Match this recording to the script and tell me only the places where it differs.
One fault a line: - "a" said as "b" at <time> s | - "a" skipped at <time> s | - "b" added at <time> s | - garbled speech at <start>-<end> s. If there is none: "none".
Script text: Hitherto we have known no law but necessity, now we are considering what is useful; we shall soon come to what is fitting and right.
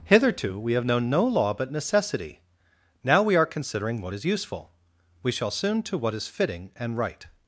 - "come" skipped at 5.8 s